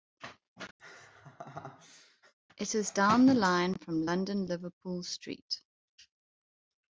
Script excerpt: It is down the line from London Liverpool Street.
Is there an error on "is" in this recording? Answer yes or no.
no